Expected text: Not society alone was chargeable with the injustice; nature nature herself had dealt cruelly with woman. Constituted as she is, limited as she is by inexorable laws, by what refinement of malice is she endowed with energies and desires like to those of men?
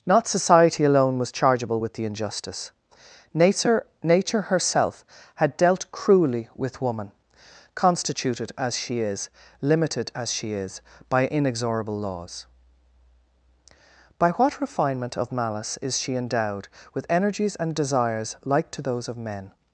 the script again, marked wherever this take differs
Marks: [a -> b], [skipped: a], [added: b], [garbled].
Not society alone was chargeable with the injustice; nature nature herself had dealt cruelly with woman. Constituted as she is, limited as she is by inexorable laws, by what refinement of malice is she endowed with energies and desires like to those of men?